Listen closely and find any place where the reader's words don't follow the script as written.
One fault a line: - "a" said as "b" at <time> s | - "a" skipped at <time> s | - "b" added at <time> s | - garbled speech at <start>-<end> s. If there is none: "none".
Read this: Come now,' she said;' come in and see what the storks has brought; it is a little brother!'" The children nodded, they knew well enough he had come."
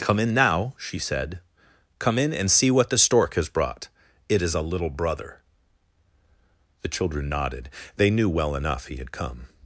- "in" added at 0.2 s
- "storks" said as "stork" at 3.0 s